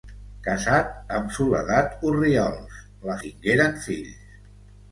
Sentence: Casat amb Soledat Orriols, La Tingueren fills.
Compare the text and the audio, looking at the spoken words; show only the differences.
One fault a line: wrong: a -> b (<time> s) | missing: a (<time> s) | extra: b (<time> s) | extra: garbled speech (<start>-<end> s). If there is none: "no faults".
no faults